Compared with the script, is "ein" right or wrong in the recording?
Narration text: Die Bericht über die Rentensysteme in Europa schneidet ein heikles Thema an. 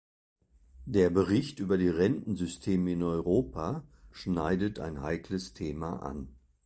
right